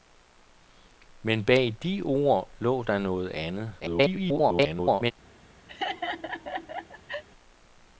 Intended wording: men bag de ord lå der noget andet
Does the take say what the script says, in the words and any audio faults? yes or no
no